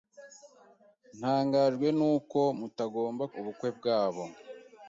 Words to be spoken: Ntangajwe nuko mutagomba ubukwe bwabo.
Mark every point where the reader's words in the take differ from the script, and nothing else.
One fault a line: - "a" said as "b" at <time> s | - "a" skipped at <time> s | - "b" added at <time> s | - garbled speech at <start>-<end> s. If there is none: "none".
none